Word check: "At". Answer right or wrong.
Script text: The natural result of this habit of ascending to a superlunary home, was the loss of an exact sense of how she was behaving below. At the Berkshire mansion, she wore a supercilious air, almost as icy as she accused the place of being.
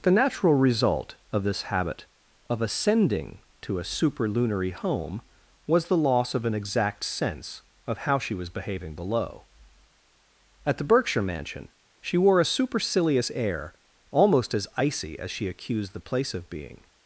right